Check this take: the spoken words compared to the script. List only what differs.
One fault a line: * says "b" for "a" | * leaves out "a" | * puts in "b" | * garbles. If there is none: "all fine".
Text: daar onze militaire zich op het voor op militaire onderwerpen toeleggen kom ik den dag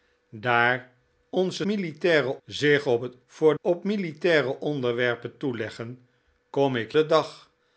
all fine